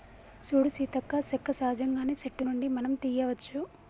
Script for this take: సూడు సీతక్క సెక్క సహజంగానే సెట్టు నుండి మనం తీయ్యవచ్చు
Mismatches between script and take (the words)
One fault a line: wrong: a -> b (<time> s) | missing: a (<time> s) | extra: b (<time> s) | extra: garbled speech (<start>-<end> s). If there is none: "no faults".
no faults